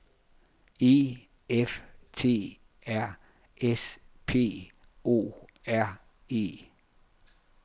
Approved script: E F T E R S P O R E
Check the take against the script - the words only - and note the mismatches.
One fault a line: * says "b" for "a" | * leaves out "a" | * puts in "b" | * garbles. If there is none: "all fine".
* leaves out "E"